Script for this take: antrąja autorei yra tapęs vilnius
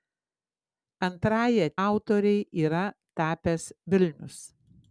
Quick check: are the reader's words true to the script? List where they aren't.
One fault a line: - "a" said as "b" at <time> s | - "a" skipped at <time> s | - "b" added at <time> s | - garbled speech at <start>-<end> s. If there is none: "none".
none